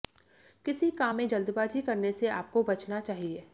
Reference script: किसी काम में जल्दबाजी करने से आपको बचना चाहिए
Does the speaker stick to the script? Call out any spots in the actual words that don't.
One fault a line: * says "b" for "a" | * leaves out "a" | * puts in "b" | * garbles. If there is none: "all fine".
all fine